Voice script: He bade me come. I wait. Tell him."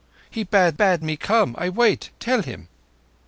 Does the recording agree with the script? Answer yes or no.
no